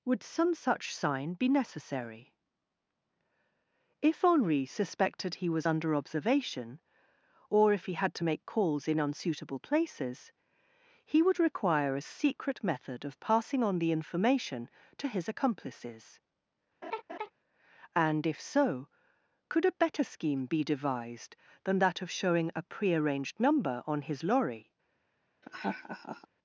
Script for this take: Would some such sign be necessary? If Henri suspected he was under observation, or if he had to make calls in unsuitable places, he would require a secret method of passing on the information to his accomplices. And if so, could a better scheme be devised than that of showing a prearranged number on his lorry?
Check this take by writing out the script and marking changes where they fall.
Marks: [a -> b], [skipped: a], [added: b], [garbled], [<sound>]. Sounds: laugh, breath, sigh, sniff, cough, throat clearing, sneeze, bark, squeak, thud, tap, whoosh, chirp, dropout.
Would some such sign be necessary? If Henri suspected he was under observation, or if he had to make calls in unsuitable places, he would require a secret method of passing on the information to his accomplices. [laugh] And if so, could a better scheme be devised than that of showing a prearranged number on his lorry? [laugh]